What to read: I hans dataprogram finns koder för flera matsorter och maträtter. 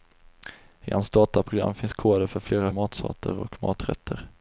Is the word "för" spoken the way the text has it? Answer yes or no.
yes